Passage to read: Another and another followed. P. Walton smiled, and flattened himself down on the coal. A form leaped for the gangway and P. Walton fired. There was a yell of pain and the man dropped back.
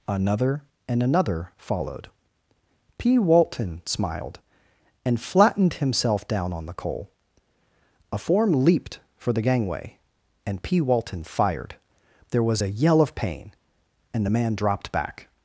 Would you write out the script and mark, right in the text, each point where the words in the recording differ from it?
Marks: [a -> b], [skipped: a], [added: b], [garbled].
Another and another followed. P. Walton smiled, and flattened himself down on the coal. A form leaped for the gangway and P. Walton fired. There was a yell of pain and the man dropped back.